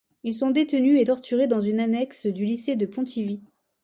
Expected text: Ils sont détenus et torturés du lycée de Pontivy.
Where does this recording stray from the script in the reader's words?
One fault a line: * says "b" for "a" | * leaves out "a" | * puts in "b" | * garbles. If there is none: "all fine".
* puts in "dans une annexe"